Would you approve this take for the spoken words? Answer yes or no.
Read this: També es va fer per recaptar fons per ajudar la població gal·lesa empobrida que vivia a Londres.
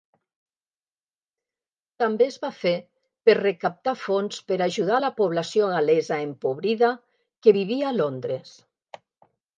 yes